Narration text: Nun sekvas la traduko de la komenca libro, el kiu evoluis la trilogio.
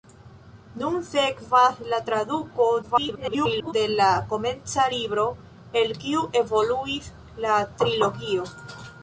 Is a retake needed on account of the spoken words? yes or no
yes